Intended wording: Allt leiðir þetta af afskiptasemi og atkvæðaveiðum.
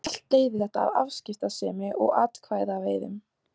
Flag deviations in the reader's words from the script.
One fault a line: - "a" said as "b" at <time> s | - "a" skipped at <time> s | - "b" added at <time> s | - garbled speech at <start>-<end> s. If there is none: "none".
none